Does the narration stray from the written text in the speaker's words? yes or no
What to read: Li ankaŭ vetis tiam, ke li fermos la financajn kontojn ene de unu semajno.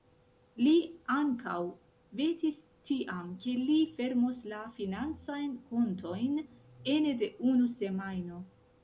no